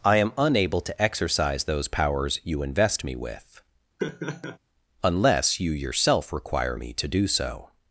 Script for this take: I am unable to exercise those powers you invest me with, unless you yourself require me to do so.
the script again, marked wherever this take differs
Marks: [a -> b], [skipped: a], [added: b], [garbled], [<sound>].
I am unable to exercise those powers you invest me with, [laugh] unless you yourself require me to do so.